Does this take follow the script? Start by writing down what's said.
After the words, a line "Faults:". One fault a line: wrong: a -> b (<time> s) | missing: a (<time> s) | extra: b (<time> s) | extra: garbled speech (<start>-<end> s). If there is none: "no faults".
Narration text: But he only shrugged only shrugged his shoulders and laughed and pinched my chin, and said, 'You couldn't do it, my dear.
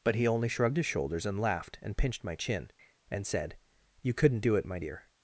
But he only shrugged his shoulders and laughed and pinched my chin, and said, 'You couldn't do it, my dear.
Faults:
missing: only shrugged (0.8 s)